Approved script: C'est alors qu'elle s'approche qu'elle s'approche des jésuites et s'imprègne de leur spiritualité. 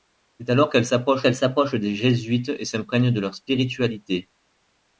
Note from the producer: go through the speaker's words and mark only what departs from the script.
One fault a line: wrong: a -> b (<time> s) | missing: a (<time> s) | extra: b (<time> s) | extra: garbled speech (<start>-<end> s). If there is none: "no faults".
no faults